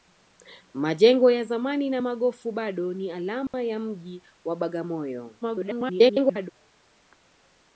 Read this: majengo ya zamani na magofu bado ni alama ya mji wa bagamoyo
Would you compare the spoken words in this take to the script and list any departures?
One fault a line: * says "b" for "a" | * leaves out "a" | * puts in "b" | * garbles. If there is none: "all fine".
* garbles